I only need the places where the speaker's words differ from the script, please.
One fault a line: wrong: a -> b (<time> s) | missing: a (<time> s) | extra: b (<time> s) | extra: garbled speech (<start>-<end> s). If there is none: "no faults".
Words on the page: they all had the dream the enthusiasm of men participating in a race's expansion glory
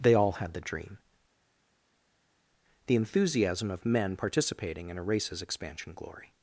no faults